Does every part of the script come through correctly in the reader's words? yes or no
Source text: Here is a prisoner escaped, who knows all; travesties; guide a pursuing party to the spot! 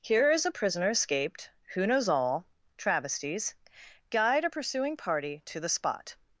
yes